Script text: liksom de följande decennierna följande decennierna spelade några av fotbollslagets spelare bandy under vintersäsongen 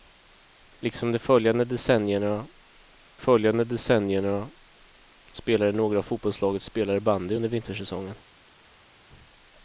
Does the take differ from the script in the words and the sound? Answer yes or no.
no